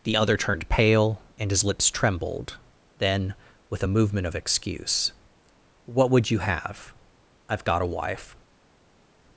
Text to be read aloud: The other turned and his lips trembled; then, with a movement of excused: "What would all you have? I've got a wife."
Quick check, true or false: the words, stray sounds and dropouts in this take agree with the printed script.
false